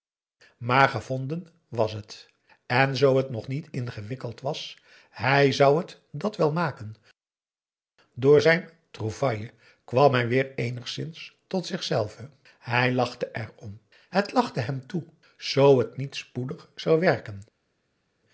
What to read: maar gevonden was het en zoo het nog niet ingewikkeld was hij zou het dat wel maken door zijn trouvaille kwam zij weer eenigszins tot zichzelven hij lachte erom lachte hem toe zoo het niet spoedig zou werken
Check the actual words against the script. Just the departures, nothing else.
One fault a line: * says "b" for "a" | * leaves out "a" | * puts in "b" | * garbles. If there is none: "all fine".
* says "hij" for "zij"
* puts in "het"